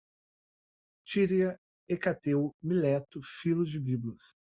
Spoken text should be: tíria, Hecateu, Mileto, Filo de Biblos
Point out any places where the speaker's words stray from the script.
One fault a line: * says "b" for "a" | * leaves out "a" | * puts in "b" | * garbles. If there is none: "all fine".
all fine